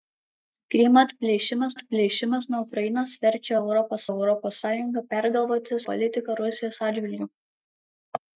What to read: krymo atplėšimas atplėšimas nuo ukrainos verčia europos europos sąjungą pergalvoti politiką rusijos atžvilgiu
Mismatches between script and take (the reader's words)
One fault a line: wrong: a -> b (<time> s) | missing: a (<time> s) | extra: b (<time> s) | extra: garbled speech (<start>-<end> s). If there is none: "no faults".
no faults